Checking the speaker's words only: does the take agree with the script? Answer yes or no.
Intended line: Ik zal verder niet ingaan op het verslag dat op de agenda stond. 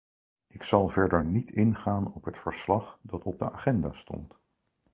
yes